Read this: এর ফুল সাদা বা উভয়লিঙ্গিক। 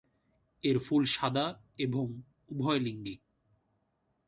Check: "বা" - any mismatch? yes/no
yes